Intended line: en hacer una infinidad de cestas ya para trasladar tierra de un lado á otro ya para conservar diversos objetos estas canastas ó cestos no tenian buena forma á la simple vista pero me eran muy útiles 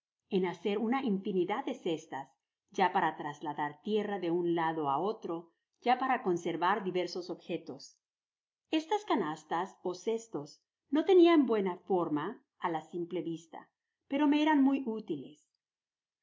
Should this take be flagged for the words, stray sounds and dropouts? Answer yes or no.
no